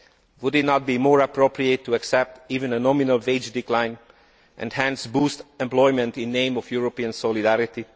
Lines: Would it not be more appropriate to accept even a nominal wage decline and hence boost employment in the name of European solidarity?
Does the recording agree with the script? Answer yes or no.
yes